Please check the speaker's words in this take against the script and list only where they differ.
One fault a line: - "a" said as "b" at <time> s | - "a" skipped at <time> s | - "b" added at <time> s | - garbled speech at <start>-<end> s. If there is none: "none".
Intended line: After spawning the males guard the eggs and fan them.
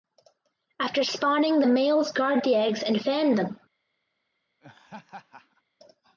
none